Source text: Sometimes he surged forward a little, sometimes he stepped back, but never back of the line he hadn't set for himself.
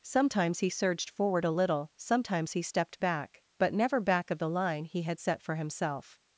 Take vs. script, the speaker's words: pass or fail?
fail